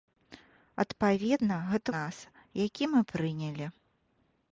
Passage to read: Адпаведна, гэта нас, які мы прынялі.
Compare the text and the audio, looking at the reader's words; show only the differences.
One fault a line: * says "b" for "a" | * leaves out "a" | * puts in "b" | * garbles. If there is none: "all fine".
all fine